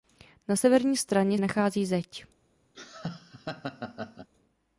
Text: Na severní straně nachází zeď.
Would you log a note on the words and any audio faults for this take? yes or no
yes